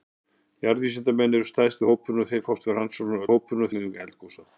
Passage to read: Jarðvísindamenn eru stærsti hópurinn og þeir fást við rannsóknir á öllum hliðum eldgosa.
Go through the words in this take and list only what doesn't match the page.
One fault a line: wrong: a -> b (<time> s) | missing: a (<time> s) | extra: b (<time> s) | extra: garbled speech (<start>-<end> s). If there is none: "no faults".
wrong: öllum -> hópurinn (3.3 s)